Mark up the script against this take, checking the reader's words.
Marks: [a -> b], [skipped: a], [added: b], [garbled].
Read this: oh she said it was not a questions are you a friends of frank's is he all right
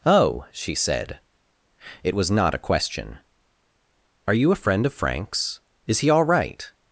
oh she said it was not a [questions -> question] are you a [friends -> friend] of frank's is he all right